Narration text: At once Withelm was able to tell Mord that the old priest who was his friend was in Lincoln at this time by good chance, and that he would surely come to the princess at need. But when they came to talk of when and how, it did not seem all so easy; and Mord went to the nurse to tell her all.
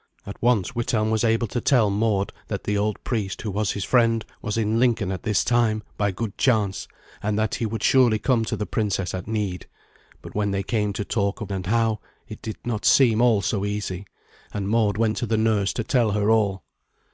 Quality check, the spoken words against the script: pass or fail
fail